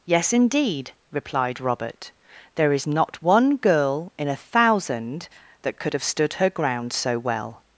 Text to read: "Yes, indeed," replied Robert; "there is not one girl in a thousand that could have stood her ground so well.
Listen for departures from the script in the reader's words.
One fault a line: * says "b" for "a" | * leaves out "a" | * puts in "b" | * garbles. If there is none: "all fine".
all fine